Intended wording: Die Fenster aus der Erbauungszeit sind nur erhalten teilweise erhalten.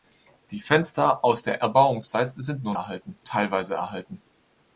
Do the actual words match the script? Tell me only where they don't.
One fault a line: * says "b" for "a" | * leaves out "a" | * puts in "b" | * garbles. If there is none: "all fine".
all fine